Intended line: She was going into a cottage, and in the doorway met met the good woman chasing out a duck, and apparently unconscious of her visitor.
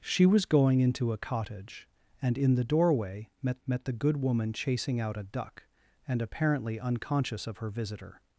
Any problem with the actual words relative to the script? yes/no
no